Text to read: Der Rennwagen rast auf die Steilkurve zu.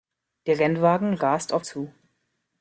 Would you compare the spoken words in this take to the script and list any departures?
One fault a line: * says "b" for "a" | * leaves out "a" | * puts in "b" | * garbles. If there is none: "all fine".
* leaves out "die Steilkurve"